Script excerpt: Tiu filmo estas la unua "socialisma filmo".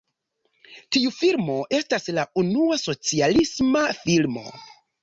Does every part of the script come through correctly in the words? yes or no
yes